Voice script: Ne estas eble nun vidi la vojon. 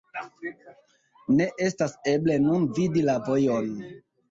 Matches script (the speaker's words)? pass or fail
pass